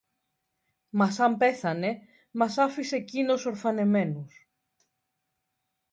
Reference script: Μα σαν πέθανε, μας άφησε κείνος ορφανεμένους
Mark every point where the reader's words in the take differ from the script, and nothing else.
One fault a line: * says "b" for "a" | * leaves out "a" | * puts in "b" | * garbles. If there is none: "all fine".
all fine